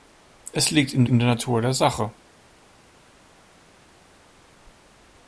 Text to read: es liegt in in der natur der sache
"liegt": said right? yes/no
yes